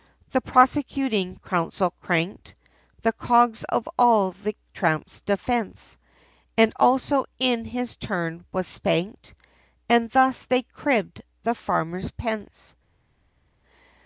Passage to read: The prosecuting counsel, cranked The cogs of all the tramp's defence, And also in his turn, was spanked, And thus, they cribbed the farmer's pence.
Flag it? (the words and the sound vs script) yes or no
no